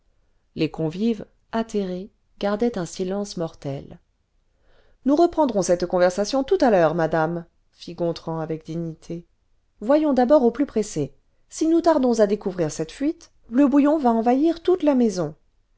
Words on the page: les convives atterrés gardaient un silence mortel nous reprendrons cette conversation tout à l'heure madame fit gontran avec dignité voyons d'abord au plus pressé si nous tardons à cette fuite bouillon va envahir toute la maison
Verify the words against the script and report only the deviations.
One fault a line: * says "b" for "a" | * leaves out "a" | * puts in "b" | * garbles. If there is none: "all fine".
* puts in "découvrir"
* puts in "le"